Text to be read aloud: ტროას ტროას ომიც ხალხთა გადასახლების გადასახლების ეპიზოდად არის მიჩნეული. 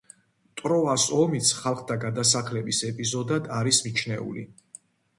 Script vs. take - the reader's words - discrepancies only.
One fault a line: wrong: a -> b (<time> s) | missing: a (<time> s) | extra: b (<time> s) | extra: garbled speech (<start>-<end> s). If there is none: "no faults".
missing: ტროას (1.1 s)
missing: გადასახლების (2.8 s)